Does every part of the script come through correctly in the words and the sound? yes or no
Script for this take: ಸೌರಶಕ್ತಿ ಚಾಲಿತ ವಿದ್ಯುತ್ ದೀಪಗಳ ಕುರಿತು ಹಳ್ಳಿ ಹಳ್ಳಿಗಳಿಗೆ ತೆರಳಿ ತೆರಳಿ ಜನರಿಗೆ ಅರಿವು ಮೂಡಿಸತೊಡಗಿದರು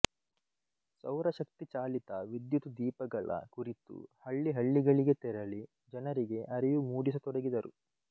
no